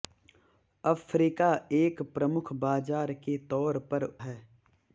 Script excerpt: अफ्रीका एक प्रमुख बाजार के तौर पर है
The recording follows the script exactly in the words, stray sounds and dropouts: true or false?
true